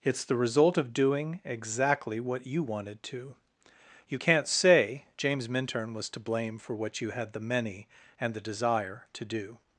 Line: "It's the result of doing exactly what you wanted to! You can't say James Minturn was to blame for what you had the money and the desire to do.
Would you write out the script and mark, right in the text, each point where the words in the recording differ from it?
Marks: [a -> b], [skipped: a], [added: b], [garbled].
"It's the result of doing exactly what you wanted to! You can't say James Minturn was to blame for what you had the [money -> many] and the desire to do.